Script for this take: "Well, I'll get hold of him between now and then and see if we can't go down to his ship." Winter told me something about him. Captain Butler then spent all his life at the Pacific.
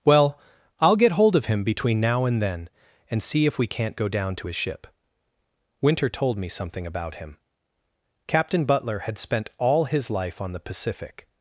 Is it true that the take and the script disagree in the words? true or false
true